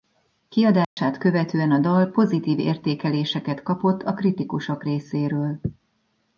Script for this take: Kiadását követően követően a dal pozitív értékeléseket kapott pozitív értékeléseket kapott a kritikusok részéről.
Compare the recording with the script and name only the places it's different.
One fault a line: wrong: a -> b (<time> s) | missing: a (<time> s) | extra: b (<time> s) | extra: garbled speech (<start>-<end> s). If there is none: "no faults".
missing: követően (1.7 s)
missing: pozitív értékeléseket kapott (4.0 s)